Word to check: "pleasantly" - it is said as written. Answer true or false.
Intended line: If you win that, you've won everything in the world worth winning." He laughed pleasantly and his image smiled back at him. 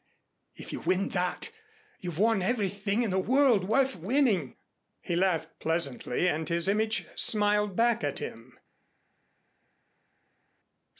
true